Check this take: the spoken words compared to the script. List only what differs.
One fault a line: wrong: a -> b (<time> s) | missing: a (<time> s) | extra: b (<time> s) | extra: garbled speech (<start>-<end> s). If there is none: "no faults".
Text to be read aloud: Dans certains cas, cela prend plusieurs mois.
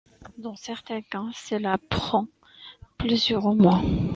no faults